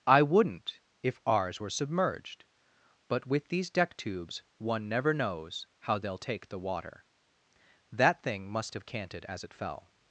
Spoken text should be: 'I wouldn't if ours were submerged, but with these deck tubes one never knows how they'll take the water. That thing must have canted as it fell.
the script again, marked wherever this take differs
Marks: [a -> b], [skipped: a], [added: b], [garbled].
'I wouldn't if ours were submerged, but with these deck tubes one never knows how they'll take the water. That thing must have canted as it fell.